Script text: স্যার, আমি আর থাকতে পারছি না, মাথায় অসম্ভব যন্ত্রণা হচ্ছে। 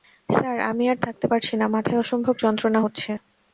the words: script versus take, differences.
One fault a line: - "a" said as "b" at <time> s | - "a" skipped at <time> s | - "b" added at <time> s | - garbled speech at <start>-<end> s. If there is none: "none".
none